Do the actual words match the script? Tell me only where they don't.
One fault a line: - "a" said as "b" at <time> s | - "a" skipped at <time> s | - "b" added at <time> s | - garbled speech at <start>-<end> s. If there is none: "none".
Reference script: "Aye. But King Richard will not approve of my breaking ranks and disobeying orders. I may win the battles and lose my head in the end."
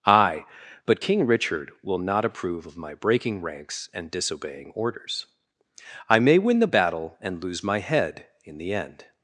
- "battles" said as "battle" at 6.6 s